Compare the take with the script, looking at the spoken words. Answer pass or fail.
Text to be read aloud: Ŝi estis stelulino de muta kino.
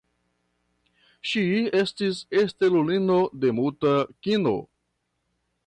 pass